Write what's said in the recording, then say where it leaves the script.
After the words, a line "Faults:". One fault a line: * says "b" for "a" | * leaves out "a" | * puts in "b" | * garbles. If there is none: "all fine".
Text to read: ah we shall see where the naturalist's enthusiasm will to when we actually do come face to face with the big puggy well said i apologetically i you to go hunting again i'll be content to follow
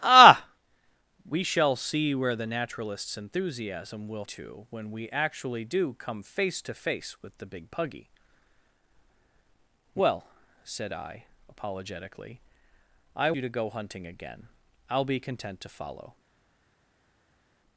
ah we shall see where the naturalist's enthusiasm will to when we actually do come face to face with the big puggy well said i apologetically i you to go hunting again i'll be content to follow
Faults:
all fine